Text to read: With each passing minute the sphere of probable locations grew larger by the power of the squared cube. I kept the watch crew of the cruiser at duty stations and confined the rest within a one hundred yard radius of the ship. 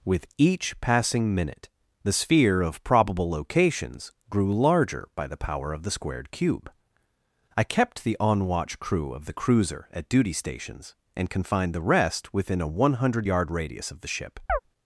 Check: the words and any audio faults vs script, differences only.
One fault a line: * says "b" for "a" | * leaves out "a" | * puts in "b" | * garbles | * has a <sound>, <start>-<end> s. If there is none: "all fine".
* puts in "on"
* has a chirp, 14.5-14.6 s